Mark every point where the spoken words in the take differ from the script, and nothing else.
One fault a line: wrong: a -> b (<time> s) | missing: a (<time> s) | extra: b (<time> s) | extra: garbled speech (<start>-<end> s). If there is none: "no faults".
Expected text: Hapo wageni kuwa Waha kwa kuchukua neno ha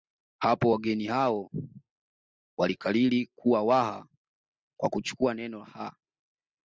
extra: hao walikariri (1.1 s)